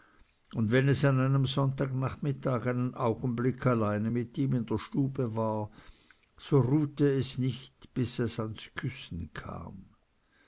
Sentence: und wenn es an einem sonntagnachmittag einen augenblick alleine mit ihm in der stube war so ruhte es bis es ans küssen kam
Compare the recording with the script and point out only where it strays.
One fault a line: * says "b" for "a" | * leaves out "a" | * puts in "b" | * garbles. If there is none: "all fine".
* puts in "nicht"